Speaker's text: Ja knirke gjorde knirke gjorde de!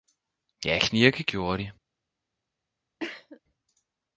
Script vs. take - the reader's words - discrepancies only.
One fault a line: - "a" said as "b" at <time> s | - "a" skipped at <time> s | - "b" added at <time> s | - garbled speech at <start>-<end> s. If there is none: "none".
- "knirke gjorde" skipped at 1.6 s